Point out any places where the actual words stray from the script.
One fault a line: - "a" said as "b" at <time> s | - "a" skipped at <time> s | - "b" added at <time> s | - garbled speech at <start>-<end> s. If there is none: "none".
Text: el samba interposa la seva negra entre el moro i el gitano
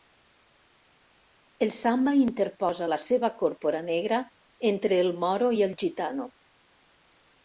- "còrpora" added at 3.4 s